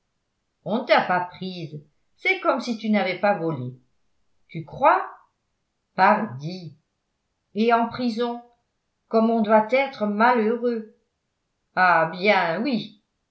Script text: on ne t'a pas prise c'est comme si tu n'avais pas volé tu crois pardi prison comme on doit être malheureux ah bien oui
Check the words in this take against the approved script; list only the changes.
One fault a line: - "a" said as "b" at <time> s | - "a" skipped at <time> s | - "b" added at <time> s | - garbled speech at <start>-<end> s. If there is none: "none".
- "et en" added at 7.5 s